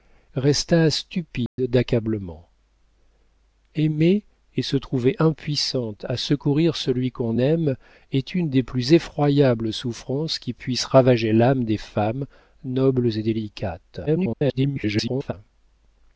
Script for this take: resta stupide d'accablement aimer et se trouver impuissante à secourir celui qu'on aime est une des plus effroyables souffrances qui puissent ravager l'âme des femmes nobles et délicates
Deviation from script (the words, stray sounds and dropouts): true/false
true